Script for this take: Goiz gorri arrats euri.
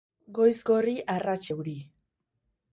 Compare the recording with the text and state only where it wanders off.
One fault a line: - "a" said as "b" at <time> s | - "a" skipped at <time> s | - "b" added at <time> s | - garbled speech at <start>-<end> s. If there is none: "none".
none